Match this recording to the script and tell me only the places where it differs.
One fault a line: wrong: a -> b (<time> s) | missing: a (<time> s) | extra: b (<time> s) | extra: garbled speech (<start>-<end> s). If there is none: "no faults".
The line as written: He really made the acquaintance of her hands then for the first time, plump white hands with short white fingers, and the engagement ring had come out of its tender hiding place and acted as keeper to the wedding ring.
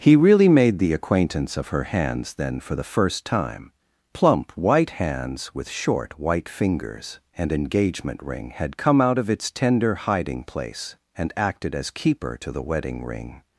missing: the (7.5 s)